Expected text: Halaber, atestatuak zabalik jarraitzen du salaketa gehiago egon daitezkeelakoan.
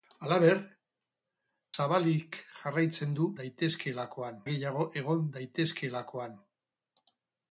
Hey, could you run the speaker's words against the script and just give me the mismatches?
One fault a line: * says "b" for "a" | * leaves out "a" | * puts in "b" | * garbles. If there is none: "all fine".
* leaves out "atestatuak"
* says "daitezkeelakoan" for "salaketa"